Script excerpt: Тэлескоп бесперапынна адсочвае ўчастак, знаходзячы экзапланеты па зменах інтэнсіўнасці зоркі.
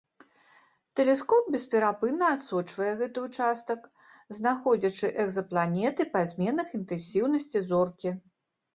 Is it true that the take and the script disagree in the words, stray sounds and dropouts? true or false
true